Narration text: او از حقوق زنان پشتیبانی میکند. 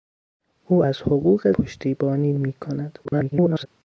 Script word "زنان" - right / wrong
wrong